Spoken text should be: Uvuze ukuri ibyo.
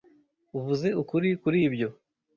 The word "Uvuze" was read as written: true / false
true